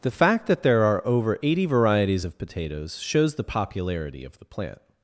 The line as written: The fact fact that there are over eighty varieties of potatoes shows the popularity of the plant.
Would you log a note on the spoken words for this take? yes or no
yes